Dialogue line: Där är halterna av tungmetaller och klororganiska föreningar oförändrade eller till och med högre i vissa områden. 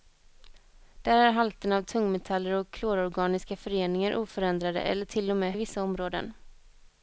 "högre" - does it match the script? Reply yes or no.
no